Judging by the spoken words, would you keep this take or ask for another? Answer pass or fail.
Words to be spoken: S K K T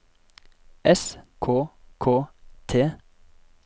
pass